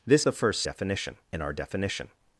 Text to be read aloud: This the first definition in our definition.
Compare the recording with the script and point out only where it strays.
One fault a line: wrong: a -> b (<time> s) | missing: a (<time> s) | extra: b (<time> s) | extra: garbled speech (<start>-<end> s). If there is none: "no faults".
no faults